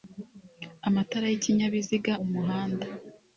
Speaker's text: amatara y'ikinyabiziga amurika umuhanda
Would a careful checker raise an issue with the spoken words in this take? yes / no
yes